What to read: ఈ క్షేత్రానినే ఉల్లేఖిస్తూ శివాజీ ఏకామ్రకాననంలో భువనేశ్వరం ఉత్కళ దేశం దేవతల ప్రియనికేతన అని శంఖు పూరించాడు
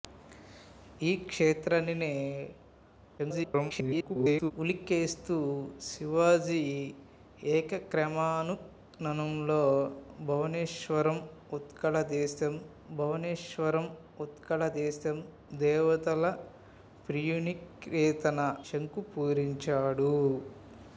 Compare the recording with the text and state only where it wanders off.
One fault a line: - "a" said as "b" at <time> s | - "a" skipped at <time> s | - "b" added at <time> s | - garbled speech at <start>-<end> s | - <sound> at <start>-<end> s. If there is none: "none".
- garbled speech at 3.2-4.5 s
- "భువనేశ్వరం ఉత్కళ దేశం" added at 12.9 s
- "అని" skipped at 18.6 s